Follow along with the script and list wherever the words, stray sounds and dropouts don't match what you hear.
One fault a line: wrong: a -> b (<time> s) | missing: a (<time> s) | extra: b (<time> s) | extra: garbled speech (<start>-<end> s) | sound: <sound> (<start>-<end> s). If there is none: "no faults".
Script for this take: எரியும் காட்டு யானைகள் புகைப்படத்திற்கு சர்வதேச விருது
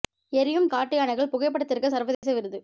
sound: dropout (2.1-2.2 s)